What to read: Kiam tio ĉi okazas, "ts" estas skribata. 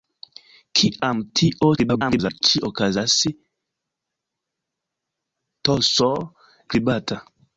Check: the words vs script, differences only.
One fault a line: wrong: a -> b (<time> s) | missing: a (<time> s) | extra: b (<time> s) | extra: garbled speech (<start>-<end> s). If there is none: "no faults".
extra: garbled speech (1.8-2.4 s)
missing: estas (6.1 s)